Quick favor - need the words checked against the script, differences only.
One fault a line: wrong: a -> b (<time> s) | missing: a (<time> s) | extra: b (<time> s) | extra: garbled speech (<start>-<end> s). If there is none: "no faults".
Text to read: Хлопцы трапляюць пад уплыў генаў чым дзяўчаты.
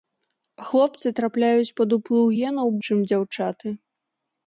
no faults